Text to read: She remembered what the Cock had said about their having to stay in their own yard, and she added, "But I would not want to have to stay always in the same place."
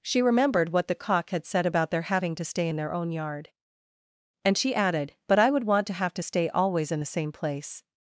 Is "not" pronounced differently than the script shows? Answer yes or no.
yes